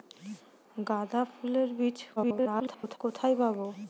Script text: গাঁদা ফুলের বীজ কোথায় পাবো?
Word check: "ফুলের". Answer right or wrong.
right